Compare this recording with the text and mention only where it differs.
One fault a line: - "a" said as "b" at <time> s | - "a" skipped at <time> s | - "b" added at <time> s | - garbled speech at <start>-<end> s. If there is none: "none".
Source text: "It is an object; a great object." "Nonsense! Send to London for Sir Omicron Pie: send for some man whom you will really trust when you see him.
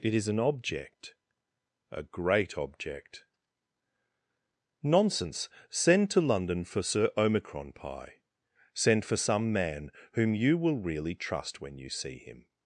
none